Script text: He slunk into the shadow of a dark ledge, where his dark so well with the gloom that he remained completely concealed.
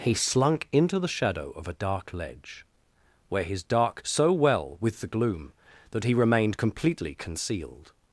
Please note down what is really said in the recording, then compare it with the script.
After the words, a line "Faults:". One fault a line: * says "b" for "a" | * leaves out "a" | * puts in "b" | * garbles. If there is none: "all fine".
He slunk into the shadow of a dark ledge, where his dark so well with the gloom that he remained completely concealed.
Faults:
all fine